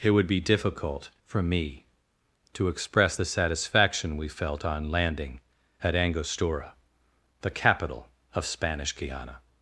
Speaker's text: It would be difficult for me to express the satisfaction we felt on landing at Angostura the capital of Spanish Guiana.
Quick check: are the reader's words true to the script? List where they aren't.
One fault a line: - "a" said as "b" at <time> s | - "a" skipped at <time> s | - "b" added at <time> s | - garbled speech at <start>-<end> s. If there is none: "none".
none